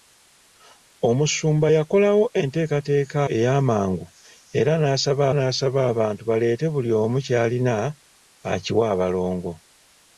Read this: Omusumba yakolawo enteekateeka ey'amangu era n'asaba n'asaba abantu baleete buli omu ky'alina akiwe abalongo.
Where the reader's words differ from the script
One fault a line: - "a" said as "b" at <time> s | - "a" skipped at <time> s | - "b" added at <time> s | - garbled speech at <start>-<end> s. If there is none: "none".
none